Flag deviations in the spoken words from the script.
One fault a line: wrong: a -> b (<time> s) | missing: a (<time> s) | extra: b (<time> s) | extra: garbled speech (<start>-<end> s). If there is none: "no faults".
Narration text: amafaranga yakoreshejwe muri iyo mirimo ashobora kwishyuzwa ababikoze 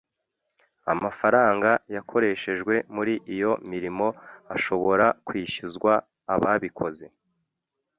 no faults